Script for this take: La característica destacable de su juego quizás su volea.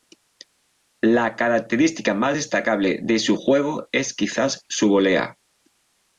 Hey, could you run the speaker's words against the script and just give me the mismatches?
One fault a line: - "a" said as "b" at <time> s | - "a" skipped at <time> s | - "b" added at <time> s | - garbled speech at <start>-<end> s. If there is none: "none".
- "más" added at 2.1 s
- "es" added at 3.9 s